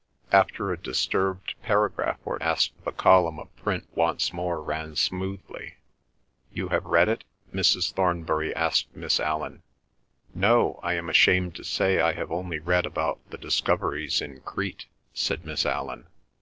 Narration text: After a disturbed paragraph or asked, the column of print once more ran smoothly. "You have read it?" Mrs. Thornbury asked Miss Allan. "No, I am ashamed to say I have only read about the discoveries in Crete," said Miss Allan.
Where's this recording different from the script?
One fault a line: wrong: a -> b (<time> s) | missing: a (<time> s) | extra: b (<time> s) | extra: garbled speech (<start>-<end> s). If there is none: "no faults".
no faults